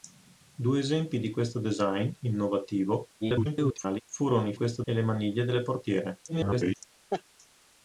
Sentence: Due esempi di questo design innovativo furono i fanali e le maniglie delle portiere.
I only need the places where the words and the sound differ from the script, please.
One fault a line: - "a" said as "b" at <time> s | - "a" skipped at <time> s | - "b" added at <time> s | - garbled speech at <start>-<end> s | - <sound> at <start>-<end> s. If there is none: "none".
- garbled speech at 3.2-4.0 s
- "fanali" said as "questo" at 4.5 s
- garbled speech at 6.3-6.8 s
- laugh at 7.1-7.2 s